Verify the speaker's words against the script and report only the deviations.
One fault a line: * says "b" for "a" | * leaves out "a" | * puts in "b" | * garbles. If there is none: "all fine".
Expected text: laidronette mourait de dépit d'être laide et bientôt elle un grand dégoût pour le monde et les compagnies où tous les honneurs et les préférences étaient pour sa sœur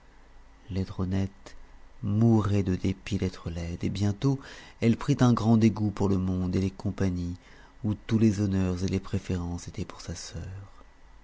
* puts in "prit"